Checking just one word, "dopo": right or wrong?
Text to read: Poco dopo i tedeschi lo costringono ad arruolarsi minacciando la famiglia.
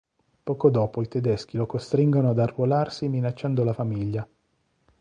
right